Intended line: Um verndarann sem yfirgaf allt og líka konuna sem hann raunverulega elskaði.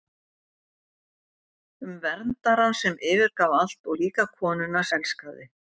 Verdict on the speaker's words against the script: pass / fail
fail